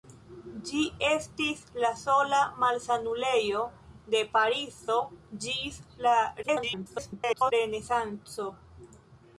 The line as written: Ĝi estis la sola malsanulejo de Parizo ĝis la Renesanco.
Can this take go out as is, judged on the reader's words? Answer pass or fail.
fail